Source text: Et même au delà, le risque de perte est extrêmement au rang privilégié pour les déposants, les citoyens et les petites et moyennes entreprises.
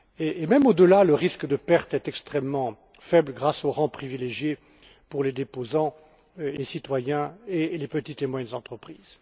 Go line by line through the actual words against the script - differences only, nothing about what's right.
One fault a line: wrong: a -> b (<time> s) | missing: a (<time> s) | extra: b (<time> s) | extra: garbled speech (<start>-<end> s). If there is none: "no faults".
extra: faible grâce (3.0 s)